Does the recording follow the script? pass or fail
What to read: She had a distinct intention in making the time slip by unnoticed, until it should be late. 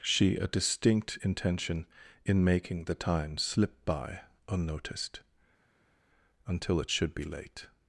fail